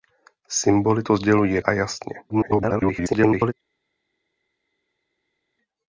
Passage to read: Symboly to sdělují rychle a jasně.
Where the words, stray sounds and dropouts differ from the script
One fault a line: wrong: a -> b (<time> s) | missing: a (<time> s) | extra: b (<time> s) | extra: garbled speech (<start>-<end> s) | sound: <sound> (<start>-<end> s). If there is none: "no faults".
missing: rychle (1.6 s)
extra: garbled speech (2.3-3.5 s)